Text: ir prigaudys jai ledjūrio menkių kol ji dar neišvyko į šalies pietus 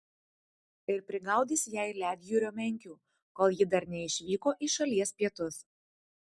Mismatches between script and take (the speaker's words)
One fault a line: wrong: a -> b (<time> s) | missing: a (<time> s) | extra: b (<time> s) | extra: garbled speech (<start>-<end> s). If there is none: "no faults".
no faults